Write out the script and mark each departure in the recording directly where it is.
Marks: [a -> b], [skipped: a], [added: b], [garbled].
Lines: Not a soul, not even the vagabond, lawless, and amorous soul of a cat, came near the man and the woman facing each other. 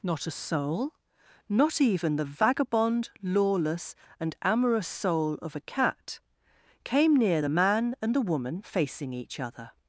Not a soul, not even the vagabond, lawless, and amorous soul of a cat, came near the man and the woman facing each other.